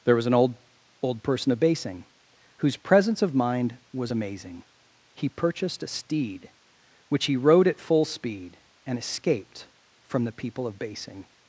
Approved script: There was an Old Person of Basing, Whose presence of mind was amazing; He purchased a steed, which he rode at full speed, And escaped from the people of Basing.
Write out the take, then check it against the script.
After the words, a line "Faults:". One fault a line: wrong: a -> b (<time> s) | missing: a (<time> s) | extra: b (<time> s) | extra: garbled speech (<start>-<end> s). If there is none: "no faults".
There was an Old Old Person of Basing, Whose presence of mind was amazing; He purchased a steed, which he rode at full speed, And escaped from the people of Basing.
Faults:
extra: Old (1.0 s)